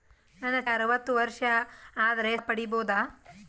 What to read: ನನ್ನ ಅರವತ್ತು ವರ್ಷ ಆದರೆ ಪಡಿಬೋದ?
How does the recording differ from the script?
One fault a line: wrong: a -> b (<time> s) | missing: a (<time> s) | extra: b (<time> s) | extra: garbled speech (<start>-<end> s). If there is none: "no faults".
no faults